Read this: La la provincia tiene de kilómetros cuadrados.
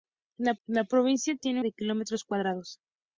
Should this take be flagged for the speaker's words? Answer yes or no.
no